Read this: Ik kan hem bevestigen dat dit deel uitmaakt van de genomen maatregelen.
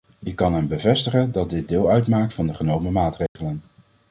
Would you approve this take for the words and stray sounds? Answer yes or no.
no